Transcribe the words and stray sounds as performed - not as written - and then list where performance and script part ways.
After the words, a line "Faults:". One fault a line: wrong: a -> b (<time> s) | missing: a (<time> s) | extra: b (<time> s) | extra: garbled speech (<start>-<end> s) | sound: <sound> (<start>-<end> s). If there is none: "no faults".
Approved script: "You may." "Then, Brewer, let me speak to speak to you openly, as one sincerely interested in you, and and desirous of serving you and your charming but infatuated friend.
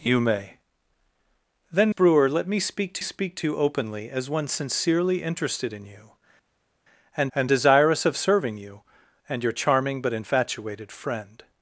"You may." "Then, Brewer, let me speak to speak to you openly, as one sincerely interested in you, and and desirous of serving you and your charming but infatuated friend.
Faults:
no faults